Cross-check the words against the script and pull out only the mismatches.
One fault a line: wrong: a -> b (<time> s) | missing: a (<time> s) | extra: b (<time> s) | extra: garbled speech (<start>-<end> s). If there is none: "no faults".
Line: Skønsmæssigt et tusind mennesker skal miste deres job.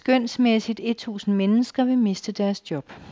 wrong: skal -> vil (1.8 s)